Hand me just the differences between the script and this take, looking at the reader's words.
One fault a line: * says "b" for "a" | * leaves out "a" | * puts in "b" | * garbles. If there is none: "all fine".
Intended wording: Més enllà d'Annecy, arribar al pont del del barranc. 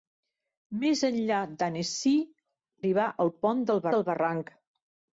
all fine